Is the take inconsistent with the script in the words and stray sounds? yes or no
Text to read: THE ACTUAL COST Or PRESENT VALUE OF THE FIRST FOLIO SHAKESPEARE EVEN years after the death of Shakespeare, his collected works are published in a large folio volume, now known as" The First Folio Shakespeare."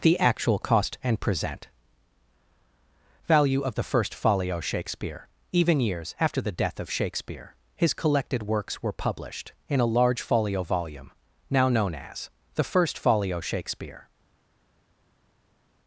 yes